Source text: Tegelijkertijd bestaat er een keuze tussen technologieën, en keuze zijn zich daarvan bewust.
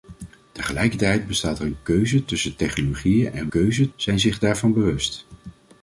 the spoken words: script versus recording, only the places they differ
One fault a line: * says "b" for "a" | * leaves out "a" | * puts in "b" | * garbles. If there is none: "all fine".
all fine